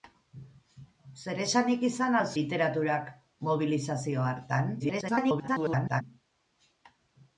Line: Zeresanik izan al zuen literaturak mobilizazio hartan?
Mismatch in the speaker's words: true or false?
true